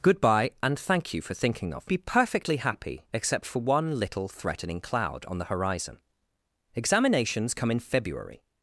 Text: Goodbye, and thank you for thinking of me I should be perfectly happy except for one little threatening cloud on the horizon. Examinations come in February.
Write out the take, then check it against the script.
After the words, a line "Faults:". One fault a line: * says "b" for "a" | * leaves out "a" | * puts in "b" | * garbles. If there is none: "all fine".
Goodbye, and thank you for thinking of be perfectly happy except for one little threatening cloud on the horizon. Examinations come in February.
Faults:
* leaves out "me I should"